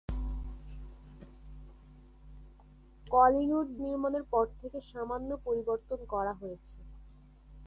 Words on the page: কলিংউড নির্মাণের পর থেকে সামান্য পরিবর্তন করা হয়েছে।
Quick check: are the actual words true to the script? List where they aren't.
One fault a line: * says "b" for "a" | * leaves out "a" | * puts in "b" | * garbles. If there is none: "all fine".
all fine